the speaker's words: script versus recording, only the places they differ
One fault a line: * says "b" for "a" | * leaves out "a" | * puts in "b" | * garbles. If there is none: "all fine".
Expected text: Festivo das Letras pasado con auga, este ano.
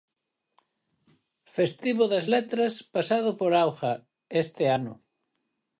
* says "por" for "con"